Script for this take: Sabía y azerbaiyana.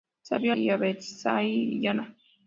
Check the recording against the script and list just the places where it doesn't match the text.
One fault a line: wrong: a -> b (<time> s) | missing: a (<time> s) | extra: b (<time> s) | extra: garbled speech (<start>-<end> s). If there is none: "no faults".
no faults